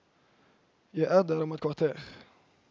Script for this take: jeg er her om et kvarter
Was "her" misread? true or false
true